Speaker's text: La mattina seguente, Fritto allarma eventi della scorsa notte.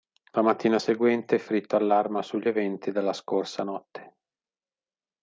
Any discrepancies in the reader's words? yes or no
yes